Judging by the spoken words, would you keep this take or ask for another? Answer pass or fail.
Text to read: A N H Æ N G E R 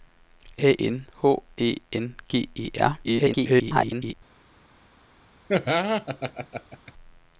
fail